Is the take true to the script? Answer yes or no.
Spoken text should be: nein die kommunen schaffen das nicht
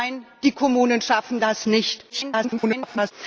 no